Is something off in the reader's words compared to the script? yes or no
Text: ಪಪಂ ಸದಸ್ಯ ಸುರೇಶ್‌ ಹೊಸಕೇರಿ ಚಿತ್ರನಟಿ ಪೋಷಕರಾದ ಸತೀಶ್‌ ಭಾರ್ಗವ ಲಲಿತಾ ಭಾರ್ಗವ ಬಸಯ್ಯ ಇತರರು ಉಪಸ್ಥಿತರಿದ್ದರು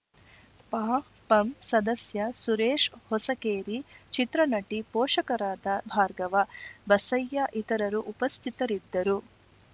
yes